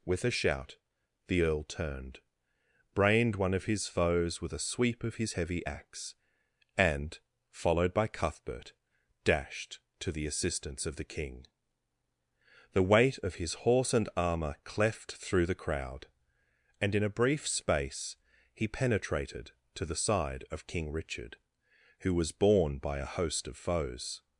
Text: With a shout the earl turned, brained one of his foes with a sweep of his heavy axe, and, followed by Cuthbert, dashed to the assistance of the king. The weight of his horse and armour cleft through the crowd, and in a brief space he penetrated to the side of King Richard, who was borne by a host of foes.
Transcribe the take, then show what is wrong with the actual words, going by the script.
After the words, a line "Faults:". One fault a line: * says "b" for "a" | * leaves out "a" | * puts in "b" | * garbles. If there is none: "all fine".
With a shout the earl turned, brained one of his foes with a sweep of his heavy axe, and, followed by Cuthbert, dashed to the assistance of the king. The weight of his horse and armour cleft through the crowd, and in a brief space he penetrated to the side of King Richard, who was borne by a host of foes.
Faults:
all fine